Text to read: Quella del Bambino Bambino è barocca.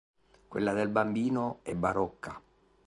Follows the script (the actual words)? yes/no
no